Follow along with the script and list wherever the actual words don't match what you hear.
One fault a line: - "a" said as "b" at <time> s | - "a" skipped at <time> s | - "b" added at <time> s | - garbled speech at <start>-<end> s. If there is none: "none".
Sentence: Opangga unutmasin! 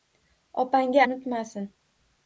none